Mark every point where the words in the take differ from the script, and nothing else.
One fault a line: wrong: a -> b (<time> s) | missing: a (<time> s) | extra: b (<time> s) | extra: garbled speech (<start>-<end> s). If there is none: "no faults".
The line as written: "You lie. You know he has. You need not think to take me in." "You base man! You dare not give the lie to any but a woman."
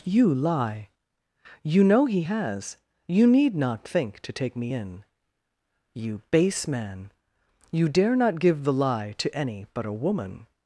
no faults